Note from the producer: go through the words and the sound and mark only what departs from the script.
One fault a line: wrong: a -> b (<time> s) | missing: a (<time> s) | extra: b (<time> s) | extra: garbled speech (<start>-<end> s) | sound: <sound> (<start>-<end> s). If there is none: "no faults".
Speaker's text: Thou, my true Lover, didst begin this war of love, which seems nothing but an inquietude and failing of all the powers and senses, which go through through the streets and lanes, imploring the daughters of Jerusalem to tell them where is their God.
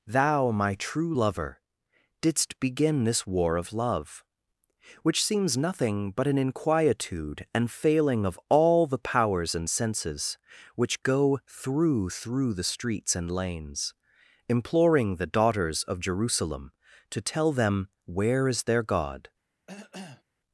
sound: cough (19.7-20.2 s)